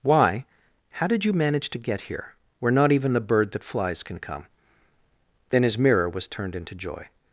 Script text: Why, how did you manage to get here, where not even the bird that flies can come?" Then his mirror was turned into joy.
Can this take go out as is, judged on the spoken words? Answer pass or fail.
pass